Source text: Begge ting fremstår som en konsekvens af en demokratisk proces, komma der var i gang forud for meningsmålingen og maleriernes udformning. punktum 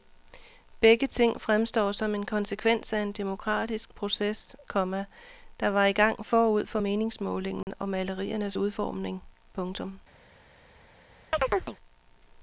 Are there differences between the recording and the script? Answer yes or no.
no